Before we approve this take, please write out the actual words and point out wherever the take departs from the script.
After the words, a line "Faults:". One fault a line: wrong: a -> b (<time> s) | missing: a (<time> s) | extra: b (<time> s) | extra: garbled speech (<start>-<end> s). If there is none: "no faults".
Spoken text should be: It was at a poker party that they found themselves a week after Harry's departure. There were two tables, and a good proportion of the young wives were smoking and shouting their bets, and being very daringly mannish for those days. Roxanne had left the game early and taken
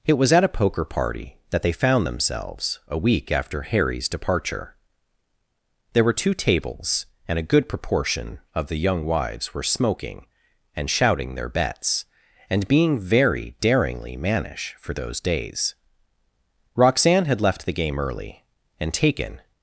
It was at a poker party that they found themselves a week after Harry's departure. There were two tables, and a good proportion of the young wives were smoking and shouting their bets, and being very daringly mannish for those days. Roxanne had left the game early and taken
Faults:
no faults